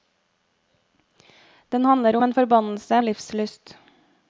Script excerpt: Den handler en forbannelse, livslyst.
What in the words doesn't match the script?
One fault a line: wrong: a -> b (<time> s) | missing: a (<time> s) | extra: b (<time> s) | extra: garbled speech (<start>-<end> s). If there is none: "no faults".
no faults